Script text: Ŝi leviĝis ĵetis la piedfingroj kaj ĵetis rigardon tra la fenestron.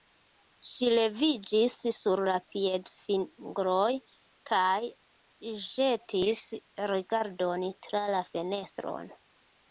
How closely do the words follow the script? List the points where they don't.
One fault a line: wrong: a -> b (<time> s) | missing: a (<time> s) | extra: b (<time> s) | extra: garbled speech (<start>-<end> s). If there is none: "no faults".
wrong: ĵetis -> sur (2.0 s)